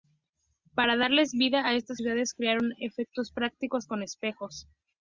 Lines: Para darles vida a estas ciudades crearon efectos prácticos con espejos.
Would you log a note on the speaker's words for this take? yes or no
no